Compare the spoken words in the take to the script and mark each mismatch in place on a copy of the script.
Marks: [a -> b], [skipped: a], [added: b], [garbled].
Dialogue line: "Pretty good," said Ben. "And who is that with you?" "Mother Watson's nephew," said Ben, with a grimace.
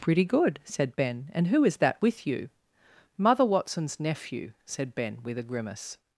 "Pretty good," said Ben. "And who is that with you?" "Mother Watson's nephew," said Ben, with a grimace.